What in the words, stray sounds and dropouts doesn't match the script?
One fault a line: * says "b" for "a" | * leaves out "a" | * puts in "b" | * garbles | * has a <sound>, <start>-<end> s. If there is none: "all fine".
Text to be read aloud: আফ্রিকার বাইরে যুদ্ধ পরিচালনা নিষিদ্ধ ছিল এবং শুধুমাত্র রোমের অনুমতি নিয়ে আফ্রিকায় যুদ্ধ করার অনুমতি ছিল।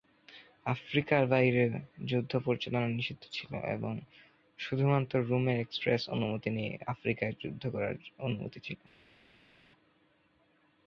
* puts in "এক্সপ্রেস"